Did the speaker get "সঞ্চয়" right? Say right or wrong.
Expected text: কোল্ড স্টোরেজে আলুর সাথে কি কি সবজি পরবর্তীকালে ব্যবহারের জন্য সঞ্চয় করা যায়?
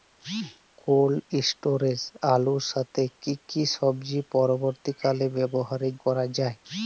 wrong